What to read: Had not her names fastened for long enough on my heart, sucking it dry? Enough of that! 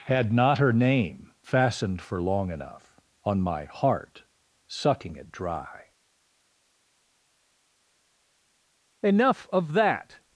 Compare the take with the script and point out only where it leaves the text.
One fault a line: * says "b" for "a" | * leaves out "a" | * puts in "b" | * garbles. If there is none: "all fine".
* says "name" for "names"